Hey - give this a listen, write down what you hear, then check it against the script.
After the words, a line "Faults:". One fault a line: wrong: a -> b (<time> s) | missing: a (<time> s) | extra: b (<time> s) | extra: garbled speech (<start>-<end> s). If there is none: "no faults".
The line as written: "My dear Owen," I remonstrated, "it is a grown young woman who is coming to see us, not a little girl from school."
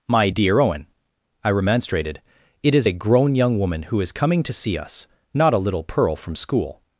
"My dear Owen," I remonstrated, "it is a grown young woman who is coming to see us, not a little pearl from school."
Faults:
wrong: girl -> pearl (5.8 s)